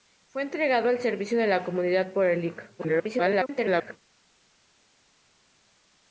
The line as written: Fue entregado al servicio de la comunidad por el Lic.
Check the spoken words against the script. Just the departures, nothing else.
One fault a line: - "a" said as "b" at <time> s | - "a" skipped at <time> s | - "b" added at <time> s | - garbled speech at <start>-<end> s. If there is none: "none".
- garbled speech at 2.8-4.0 s